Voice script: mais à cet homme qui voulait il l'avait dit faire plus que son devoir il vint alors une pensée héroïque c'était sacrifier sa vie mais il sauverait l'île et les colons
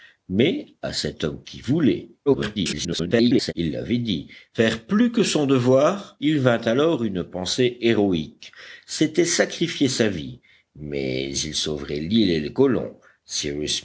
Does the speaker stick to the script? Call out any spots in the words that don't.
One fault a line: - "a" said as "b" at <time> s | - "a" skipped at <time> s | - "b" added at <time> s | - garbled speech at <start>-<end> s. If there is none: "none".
- garbled speech at 2.3-3.5 s